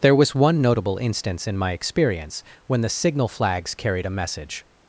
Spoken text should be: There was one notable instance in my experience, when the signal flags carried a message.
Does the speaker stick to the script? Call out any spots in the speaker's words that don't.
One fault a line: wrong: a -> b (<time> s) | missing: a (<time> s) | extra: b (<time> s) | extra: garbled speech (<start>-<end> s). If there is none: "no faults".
no faults